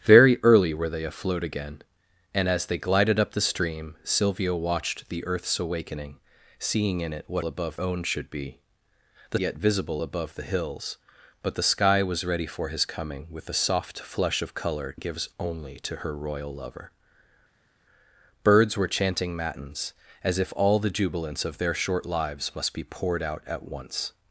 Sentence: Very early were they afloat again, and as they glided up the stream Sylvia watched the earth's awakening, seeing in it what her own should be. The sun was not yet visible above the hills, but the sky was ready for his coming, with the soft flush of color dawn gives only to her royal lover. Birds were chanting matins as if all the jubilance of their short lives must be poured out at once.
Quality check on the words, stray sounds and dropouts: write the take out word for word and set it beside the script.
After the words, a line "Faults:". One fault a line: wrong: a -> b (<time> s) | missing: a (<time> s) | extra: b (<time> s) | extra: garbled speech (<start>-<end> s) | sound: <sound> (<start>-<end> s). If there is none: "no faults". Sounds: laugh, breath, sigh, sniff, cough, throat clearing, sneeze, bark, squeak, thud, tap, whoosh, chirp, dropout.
Very early were they afloat again, and as they glided up the stream Sylvia watched the earth's awakening, seeing in it what above own should be. The yet visible above the hills, but the sky was ready for his coming, with the soft flush of color gives only to her royal lover. Birds were chanting matins as if all the jubilance of their short lives must be poured out at once.
Faults:
wrong: her -> above (7.4 s)
missing: sun was not (9.4 s)
missing: dawn (15.0 s)